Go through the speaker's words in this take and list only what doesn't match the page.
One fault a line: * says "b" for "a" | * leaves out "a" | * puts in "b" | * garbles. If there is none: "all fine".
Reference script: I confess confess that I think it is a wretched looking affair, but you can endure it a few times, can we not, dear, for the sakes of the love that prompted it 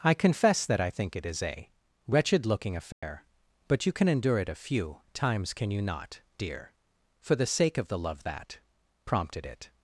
* leaves out "confess"
* says "you" for "we"
* says "sake" for "sakes"